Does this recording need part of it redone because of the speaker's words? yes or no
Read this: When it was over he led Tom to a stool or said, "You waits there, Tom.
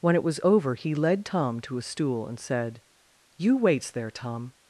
yes